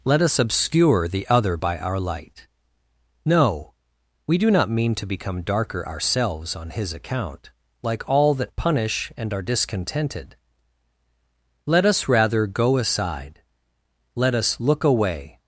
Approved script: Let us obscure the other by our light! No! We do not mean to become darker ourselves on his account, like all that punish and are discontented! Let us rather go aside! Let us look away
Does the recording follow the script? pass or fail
pass